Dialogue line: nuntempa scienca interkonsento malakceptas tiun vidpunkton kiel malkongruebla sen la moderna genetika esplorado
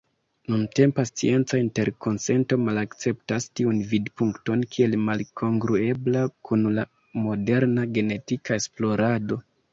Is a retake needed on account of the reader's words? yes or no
yes